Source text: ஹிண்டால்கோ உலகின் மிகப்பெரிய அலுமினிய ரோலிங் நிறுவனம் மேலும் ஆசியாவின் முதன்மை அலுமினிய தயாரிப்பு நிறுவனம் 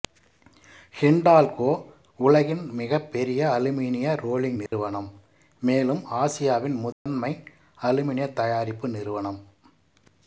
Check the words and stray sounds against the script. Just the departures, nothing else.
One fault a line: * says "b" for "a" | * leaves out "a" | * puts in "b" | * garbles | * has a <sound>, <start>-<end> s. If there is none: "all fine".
* has a dropout, 4.7-4.7 s
* has a dropout, 6.9-7.1 s